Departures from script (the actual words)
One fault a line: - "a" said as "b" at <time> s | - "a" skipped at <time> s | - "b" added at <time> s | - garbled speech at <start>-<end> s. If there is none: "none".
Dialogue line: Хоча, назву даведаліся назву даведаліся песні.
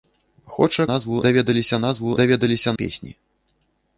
none